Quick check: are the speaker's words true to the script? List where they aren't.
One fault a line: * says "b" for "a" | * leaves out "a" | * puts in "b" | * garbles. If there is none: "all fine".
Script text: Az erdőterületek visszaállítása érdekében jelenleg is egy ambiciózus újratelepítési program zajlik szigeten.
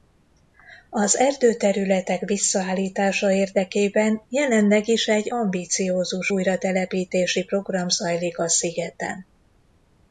* puts in "a"